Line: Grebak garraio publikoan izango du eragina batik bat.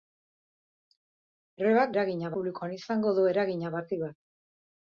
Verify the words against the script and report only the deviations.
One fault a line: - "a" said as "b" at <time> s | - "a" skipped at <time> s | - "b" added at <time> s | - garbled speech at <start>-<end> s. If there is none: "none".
- "garraio" said as "eragina" at 2.0 s